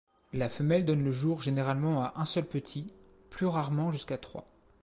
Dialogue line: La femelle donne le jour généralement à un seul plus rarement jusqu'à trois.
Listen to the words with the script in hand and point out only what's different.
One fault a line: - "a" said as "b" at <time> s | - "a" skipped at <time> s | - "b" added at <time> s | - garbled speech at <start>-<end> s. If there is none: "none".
- "petit" added at 2.4 s